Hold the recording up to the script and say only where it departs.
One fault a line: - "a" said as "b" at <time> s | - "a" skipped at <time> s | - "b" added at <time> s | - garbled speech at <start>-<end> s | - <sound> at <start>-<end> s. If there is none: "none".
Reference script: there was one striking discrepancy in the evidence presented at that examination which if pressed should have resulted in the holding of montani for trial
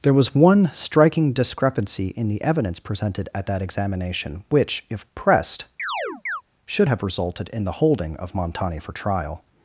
- chirp at 5.8-6.4 s